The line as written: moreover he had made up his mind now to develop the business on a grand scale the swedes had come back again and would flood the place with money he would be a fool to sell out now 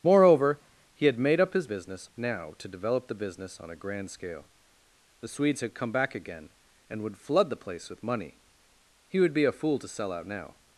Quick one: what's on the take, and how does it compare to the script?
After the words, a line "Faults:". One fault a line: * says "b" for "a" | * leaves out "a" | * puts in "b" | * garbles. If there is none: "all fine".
moreover he had made up his business now to develop the business on a grand scale the swedes had come back again and would flood the place with money he would be a fool to sell out now
Faults:
* says "business" for "mind"